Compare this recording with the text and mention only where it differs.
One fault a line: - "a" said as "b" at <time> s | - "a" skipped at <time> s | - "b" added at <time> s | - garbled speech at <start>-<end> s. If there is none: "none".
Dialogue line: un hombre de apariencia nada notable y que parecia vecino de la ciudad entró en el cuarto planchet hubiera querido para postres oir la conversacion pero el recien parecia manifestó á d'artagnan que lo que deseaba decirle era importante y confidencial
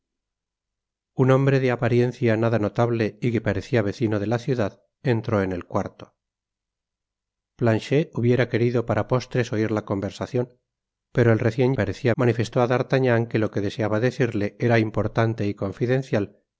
none